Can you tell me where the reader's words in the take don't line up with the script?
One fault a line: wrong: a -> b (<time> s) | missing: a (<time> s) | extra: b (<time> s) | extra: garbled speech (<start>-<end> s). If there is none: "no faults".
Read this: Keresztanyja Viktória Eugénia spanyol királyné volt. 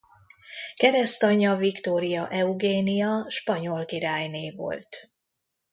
no faults